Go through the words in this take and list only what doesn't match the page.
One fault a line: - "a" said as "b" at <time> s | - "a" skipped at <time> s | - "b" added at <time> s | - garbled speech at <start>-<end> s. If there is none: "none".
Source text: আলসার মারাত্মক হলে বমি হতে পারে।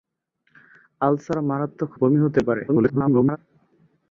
- "হলে" skipped at 1.9 s
- garbled speech at 2.7-3.4 s